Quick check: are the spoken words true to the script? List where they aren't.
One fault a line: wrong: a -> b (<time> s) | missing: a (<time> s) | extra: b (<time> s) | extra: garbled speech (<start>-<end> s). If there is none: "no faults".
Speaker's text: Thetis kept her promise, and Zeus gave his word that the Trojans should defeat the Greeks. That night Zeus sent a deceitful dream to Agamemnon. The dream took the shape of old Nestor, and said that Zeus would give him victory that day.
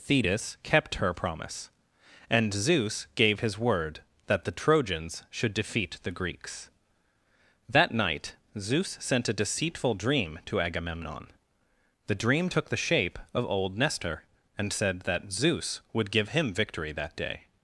no faults